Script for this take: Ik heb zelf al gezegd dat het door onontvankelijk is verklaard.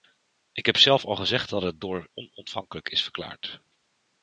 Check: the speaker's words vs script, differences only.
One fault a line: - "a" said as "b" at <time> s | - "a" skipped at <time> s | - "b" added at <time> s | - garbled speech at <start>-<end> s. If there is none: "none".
none